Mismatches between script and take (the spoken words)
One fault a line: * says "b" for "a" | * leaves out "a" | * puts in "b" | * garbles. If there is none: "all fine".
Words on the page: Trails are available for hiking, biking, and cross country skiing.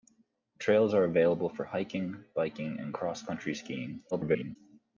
* garbles